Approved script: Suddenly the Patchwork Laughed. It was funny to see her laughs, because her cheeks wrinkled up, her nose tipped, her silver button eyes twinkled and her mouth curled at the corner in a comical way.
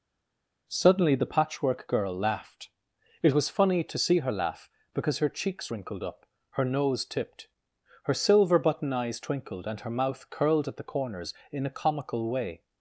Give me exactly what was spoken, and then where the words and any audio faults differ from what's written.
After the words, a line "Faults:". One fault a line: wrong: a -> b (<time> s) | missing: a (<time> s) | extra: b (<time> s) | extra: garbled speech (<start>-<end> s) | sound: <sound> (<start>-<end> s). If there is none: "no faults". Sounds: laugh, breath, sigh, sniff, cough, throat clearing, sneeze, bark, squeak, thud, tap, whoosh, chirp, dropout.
Suddenly the Patchwork Girl laughed. It was funny to see her laugh, because her cheeks wrinkled up, her nose tipped, her silver button eyes twinkled and her mouth curled at the corners in a comical way.
Faults:
extra: Girl (1.9 s)
wrong: laughs -> laugh (4.3 s)
wrong: corner -> corners (10.8 s)